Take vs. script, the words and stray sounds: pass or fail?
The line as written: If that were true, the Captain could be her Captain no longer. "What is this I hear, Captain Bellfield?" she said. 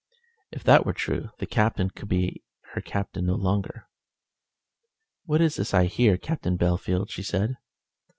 pass